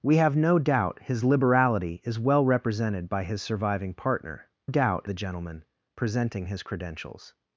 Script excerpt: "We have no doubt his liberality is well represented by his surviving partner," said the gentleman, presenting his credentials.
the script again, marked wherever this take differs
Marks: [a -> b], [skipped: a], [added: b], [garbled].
"We have no doubt his liberality is well represented by his surviving partner," [said -> doubt] the gentleman, presenting his credentials.